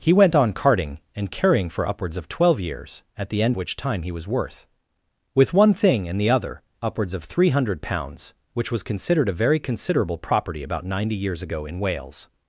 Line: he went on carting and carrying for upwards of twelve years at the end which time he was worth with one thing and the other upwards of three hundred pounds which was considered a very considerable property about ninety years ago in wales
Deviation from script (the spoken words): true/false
false